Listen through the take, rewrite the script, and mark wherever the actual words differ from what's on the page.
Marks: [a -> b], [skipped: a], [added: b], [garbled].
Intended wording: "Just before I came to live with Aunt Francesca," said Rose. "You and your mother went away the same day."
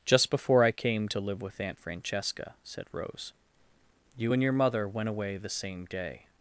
"Just before I came to live with Aunt Francesca," said Rose. "You and your mother went away the same day."